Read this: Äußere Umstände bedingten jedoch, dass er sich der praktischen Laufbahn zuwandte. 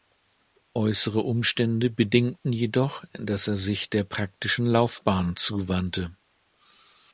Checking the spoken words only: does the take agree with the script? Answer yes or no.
yes